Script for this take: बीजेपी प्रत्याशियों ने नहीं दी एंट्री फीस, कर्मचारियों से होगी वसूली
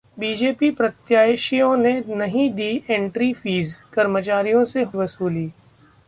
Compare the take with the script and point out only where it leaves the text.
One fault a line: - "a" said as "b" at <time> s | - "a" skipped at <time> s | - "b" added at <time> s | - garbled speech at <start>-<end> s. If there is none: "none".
- "होगी" skipped at 4.8 s